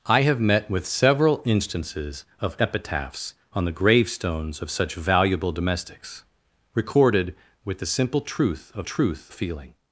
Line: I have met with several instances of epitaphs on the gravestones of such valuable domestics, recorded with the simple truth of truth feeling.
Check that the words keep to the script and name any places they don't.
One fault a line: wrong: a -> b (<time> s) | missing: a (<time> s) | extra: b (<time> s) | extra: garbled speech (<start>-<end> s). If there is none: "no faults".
no faults